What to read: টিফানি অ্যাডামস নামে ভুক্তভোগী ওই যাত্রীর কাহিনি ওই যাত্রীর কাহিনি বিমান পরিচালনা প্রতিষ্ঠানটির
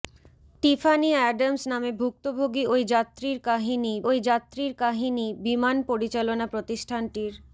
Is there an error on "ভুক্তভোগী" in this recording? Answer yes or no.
no